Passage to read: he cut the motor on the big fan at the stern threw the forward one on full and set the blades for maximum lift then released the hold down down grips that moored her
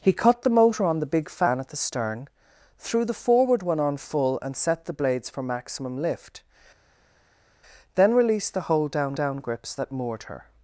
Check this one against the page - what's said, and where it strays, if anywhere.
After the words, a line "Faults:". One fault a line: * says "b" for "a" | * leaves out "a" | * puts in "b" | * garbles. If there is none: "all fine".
he cut the motor on the big fan at the stern threw the forward one on full and set the blades for maximum lift then released the hold down down grips that moored her
Faults:
all fine